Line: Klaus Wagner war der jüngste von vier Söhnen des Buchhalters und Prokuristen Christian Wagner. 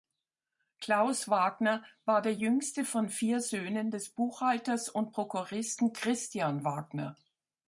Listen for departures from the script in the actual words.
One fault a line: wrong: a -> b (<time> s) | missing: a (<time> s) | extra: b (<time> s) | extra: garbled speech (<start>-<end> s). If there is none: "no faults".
no faults